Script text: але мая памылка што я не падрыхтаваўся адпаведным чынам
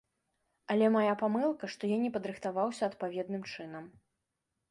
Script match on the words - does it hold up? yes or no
yes